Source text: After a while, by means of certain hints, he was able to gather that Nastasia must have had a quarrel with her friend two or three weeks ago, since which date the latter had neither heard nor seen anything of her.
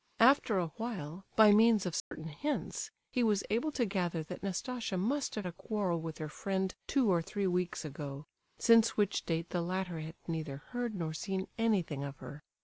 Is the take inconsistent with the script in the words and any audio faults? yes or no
yes